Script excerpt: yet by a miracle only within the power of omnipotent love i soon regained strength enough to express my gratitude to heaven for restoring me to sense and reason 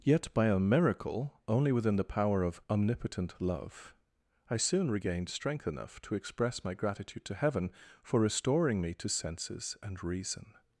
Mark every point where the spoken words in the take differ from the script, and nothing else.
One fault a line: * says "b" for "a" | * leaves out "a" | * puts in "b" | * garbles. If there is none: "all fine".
* says "senses" for "sense"